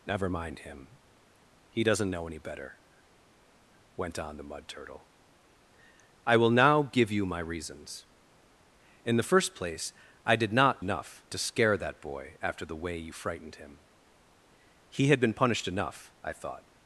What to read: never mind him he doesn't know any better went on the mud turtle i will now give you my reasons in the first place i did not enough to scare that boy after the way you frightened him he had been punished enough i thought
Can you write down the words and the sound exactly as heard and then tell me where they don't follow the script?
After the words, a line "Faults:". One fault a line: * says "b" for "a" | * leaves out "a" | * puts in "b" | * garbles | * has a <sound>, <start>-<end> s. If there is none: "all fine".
never mind him he doesn't know any better went on the mud turtle i will now give you my reasons in the first place i did not enough to scare that boy after the way you frightened him he had been punished enough i thought
Faults:
all fine